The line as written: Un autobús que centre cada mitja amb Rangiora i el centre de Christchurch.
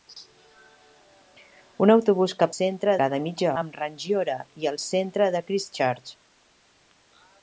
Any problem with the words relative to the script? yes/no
no